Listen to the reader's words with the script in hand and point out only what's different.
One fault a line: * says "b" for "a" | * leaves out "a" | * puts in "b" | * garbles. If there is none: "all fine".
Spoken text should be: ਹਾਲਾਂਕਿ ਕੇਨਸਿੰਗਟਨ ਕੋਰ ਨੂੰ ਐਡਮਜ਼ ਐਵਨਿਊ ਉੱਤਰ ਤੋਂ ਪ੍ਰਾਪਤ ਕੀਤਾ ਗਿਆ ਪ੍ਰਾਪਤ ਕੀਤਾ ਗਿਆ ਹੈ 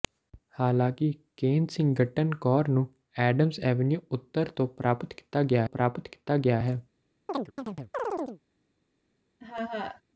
all fine